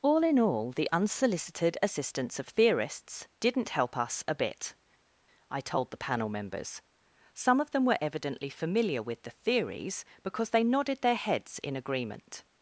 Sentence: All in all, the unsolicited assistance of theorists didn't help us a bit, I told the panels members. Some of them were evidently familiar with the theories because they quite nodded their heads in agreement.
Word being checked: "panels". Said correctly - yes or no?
no